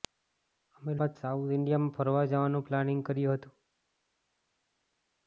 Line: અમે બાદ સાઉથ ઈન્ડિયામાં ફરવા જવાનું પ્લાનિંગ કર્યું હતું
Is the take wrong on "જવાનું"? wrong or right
right